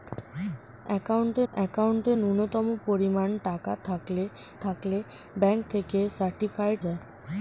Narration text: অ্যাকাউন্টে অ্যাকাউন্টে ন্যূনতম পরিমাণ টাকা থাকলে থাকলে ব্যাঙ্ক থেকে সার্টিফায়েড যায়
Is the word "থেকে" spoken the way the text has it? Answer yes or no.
yes